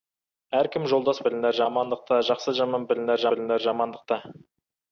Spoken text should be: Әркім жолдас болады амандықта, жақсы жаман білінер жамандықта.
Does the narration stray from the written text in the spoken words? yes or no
yes